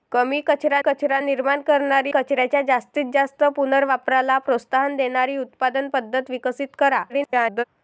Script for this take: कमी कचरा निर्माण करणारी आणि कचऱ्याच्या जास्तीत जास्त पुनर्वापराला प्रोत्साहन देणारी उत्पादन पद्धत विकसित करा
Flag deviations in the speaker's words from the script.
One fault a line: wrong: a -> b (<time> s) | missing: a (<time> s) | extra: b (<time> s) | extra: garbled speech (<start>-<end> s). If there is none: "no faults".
extra: कचरा (0.8 s)
missing: आणि (2.1 s)
extra: garbled speech (7.1-7.6 s)